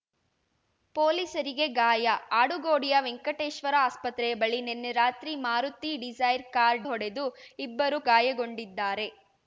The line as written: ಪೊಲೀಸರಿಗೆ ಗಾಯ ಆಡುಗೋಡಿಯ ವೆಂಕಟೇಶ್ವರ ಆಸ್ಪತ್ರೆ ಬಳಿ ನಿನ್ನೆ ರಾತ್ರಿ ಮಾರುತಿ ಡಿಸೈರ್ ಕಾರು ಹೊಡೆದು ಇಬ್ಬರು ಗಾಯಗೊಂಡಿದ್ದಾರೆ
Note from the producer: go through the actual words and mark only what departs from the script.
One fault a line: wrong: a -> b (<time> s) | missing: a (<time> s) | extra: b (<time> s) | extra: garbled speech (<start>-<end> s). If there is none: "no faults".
no faults